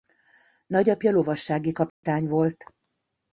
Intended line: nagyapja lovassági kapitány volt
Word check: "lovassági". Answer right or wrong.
right